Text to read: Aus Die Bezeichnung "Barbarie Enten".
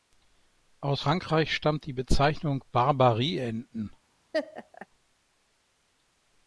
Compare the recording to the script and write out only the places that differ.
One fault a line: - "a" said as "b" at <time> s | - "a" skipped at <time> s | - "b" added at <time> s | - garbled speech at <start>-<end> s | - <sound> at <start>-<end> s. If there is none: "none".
- "Frankreich stammt" added at 1.0 s
- laugh at 4.3-4.9 s